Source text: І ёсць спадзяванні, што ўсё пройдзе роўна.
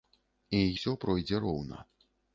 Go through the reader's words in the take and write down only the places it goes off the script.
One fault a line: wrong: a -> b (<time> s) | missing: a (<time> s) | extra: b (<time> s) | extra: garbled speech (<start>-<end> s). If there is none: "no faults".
missing: ёсць спадзяванні што (0.6 s)